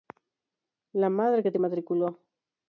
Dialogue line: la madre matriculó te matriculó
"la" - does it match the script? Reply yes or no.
yes